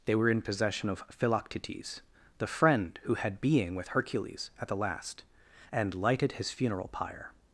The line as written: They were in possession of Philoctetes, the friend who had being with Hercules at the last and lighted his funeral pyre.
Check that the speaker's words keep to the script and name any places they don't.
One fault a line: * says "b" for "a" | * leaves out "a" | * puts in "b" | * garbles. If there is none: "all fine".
all fine